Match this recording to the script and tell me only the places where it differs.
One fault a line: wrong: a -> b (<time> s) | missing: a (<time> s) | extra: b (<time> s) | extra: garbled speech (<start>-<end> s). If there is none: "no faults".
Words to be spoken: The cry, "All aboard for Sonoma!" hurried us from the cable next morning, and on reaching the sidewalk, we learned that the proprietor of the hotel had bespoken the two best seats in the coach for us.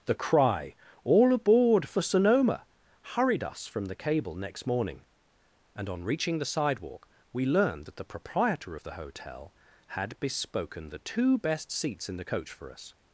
no faults